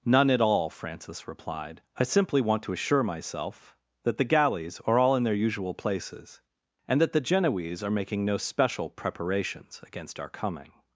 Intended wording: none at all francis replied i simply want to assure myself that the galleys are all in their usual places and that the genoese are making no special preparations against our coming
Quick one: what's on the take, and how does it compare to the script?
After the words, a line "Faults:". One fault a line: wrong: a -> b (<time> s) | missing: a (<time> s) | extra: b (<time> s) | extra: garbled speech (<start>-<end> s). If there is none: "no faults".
none at all francis replied i simply want to assure myself that the galleys are all in their usual places and that the genoese are making no special preparations against our coming
Faults:
no faults